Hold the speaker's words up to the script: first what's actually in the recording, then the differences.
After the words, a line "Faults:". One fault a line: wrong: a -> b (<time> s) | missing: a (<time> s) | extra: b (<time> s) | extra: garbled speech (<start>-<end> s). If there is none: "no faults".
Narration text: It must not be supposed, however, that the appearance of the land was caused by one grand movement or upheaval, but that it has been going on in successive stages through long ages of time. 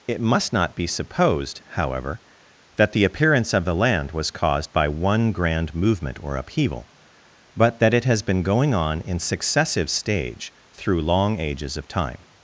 It must not be supposed, however, that the appearance of the land was caused by one grand movement or upheaval, but that it has been going on in successive stage through long ages of time.
Faults:
wrong: stages -> stage (9.9 s)